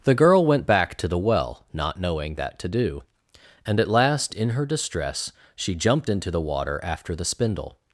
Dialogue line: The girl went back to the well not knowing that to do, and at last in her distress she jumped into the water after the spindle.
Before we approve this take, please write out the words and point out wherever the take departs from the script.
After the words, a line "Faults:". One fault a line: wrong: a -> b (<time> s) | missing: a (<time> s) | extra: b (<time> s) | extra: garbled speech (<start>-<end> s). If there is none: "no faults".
The girl went back to the well not knowing that to do, and at last in her distress she jumped into the water after the spindle.
Faults:
no faults